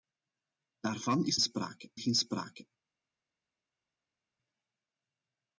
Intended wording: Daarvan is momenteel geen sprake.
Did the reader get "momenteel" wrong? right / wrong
wrong